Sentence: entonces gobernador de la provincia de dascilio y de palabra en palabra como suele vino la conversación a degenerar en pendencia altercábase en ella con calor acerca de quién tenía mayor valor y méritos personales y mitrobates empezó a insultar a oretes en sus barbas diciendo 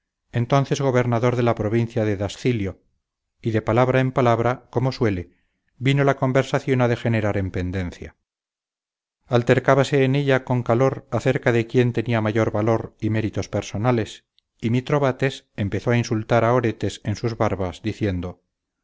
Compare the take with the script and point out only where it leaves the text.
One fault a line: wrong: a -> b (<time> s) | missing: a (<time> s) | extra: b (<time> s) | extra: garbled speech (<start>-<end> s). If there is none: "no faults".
no faults